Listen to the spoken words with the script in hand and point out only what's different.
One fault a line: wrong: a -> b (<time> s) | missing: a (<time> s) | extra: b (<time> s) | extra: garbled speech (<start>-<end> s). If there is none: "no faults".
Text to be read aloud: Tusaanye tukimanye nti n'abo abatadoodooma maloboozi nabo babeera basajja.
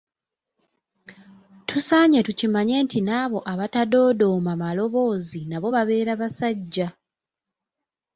no faults